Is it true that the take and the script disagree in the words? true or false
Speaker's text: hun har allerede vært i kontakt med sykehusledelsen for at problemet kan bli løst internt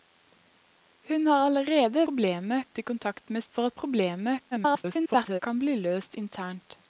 true